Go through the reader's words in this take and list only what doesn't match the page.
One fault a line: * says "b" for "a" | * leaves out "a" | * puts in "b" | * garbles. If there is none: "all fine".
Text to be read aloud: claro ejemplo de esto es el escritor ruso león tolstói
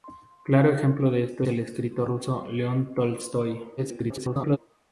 * leaves out "es"
* garbles